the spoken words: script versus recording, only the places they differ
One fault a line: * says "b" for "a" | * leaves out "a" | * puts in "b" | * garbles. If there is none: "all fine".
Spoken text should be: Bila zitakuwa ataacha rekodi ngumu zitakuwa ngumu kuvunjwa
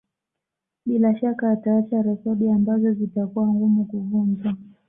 * says "shaka" for "zitakuwa"
* says "ambazo" for "ngumu"